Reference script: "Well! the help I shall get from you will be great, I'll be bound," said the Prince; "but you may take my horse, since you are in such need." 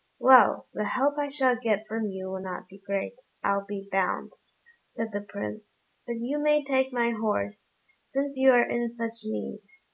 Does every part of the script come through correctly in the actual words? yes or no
no